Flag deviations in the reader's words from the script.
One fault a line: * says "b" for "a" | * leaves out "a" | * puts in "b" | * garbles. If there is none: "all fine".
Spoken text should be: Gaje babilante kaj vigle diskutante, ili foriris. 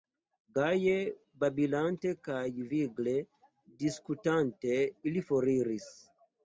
all fine